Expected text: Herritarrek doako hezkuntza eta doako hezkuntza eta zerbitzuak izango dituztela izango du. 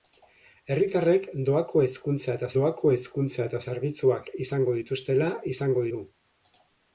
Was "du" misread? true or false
false